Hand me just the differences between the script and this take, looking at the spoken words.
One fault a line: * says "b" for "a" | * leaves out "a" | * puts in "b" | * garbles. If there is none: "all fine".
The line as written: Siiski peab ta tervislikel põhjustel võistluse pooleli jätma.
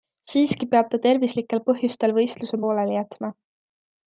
all fine